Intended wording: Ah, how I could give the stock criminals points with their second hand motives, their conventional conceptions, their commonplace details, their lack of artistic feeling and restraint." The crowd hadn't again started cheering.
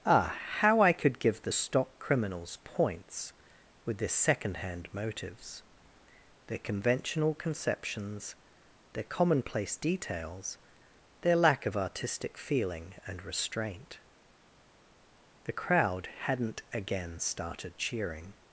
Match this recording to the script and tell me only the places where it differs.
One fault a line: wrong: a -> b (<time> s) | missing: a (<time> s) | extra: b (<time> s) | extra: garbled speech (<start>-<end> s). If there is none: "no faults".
no faults